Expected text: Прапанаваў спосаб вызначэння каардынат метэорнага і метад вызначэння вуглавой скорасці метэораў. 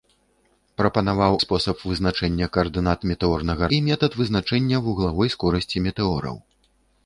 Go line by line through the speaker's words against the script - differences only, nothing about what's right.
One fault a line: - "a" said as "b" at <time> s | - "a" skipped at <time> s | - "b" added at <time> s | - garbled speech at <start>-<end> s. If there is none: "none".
none